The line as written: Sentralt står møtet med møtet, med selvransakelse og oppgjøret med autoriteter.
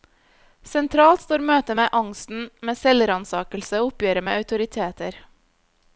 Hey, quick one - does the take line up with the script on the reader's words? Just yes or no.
no